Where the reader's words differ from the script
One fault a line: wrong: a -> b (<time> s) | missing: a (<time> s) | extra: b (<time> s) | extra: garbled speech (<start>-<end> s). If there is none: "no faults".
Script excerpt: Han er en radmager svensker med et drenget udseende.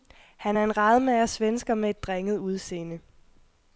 no faults